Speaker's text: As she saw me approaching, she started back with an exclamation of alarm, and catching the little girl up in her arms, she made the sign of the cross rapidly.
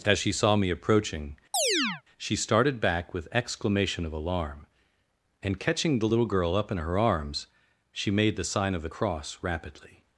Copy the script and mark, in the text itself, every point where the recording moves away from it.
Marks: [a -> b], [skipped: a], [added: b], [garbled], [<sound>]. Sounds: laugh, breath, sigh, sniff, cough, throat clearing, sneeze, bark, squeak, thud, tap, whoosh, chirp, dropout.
As she saw me approaching, [chirp] she started back with [skipped: an] exclamation of alarm, and catching the little girl up in her arms, she made the sign of the cross rapidly.